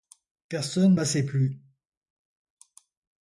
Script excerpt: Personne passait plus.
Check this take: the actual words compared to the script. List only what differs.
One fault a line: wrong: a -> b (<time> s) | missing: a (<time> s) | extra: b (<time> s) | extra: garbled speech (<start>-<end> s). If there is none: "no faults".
no faults